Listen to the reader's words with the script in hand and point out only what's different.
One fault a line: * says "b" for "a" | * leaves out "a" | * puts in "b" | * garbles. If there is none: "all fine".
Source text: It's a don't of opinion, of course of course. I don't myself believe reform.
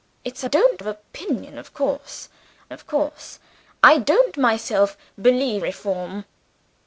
all fine